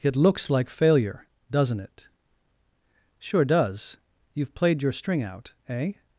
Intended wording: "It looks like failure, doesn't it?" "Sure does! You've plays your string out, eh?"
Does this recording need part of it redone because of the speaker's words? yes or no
yes